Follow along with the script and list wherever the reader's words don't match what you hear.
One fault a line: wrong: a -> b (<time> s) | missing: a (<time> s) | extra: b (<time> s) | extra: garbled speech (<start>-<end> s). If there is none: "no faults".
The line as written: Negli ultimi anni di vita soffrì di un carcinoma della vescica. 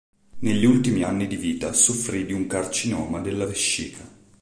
no faults